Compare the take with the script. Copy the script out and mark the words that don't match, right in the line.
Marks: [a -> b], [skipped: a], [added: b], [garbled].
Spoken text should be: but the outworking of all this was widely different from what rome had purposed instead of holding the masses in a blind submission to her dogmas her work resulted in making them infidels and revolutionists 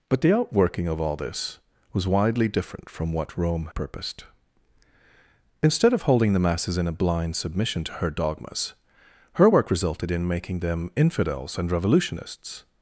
but the outworking of all this was widely different from what rome [skipped: had] purposed instead of holding the masses in a blind submission to her dogmas her work resulted in making them infidels and revolutionists